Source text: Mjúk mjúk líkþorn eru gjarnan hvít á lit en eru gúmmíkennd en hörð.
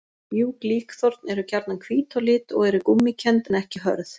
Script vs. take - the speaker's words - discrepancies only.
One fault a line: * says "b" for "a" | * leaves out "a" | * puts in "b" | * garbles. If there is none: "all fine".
* leaves out "mjúk"
* says "og" for "en"
* puts in "ekki"